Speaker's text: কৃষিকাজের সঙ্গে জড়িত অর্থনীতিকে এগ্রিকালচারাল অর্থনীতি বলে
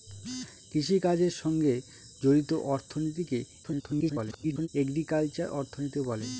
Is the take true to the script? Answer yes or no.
no